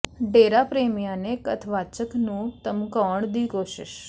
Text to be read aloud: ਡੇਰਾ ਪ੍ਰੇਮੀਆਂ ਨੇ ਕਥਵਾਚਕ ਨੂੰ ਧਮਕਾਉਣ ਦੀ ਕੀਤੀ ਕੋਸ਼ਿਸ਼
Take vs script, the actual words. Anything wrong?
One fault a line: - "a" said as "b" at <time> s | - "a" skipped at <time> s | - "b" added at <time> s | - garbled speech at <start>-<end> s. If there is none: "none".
- "ਕੀਤੀ" skipped at 3.5 s